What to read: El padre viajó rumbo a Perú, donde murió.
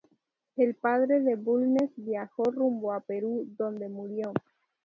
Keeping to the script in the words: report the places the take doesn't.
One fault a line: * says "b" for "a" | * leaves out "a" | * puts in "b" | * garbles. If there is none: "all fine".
* puts in "de Bulnes"